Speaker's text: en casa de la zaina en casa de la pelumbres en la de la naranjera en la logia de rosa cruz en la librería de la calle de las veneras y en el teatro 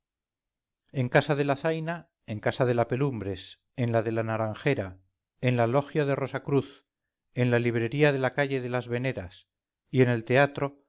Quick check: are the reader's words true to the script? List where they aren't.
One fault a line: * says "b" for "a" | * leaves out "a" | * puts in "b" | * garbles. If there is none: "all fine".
all fine